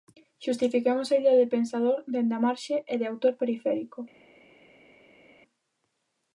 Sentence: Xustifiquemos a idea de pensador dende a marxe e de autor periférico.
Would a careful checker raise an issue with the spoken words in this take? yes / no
no